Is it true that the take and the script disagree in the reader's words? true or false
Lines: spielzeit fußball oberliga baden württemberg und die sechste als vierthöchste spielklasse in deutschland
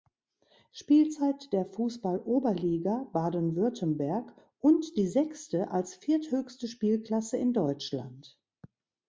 true